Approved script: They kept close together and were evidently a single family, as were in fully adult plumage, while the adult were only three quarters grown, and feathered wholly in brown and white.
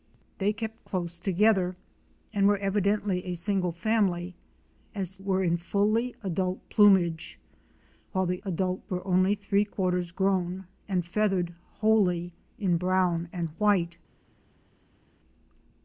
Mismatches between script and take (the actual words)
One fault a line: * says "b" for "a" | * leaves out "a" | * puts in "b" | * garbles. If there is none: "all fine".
all fine